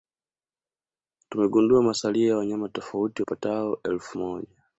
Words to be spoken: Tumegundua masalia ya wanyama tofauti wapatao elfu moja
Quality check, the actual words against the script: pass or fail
pass